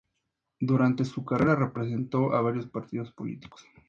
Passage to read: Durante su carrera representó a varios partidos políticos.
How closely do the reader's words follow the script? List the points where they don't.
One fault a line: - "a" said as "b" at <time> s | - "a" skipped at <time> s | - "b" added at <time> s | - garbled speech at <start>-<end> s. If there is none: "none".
none